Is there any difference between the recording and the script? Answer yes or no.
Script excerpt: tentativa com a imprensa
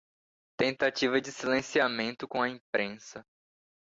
yes